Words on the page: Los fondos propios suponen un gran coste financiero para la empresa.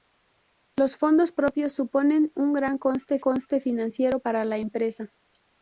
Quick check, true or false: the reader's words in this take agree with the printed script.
false